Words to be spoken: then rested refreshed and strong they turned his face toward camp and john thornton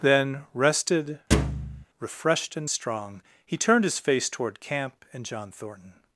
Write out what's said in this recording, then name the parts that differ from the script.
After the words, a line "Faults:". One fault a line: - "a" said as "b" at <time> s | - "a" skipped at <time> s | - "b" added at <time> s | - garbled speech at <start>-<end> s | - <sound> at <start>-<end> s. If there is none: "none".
then rested refreshed and strong he turned his face toward camp and john thornton
Faults:
- thud at 1.3-1.9 s
- "they" said as "he" at 3.4 s